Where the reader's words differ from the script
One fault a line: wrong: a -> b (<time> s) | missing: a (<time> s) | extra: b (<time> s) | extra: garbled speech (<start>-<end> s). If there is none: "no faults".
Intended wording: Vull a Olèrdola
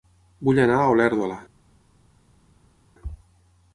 extra: anar (0.6 s)